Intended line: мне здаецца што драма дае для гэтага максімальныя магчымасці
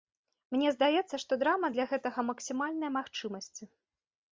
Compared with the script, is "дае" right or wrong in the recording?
wrong